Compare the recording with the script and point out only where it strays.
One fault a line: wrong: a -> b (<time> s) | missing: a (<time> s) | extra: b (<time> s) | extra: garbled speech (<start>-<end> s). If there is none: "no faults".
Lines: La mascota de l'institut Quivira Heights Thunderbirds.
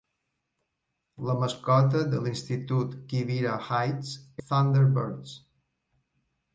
no faults